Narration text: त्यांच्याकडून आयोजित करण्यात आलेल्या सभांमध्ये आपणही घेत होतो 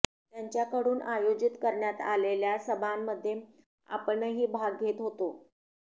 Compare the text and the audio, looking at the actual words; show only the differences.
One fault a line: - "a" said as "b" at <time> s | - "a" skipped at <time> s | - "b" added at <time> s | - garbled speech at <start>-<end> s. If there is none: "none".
- "भाग" added at 4.5 s